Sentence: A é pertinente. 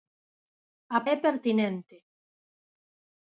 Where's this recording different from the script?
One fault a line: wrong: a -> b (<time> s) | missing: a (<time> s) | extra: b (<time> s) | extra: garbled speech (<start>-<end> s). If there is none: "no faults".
no faults